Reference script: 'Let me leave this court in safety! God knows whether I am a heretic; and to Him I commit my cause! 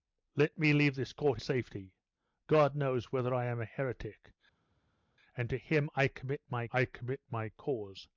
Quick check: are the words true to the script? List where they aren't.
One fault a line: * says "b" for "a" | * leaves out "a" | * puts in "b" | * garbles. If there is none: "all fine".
* leaves out "in"
* puts in "I commit my"